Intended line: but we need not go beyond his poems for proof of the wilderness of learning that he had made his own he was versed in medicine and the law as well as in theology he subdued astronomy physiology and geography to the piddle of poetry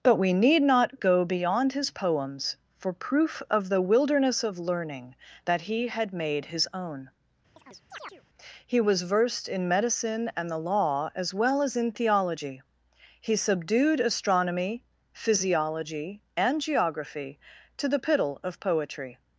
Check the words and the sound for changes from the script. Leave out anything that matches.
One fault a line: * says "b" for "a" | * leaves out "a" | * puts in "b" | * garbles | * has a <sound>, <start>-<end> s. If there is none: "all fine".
* has a chirp, 7.6-8.2 s